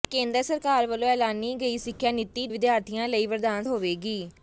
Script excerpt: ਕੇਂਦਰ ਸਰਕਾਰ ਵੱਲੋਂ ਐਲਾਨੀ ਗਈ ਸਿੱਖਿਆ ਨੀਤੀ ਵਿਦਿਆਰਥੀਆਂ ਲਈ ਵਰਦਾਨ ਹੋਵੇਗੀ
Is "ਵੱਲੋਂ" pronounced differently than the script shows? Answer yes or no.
no